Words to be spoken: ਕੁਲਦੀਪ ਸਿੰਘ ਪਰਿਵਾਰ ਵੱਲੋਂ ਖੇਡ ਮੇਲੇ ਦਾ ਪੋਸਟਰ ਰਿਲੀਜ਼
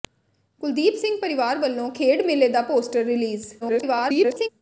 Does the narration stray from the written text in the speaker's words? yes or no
yes